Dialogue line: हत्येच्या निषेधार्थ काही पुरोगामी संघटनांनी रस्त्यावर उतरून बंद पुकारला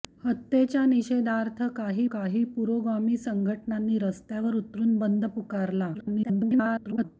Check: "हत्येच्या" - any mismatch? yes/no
no